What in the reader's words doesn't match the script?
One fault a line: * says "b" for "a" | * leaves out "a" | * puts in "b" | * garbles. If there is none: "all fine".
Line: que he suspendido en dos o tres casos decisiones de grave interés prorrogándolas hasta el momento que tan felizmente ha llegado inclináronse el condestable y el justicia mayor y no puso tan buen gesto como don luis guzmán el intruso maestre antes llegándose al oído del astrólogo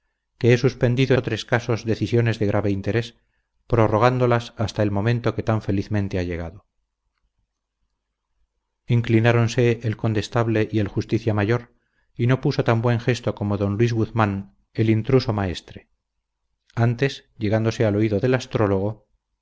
* leaves out "en dos"